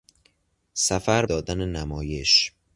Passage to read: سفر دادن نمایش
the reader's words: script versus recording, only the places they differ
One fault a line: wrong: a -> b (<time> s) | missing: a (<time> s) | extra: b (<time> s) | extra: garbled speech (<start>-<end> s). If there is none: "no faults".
no faults